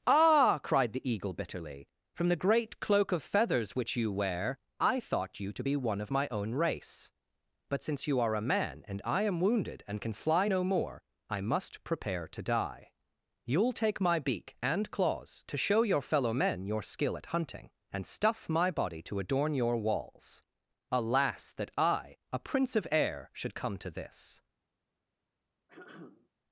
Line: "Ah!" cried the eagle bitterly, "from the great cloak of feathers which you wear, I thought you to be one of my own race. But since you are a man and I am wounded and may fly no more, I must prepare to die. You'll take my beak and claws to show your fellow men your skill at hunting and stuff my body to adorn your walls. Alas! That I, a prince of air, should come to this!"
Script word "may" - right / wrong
wrong